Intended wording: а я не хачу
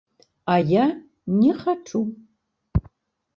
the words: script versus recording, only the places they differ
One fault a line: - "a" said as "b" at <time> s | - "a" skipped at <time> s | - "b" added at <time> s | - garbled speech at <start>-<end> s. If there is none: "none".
none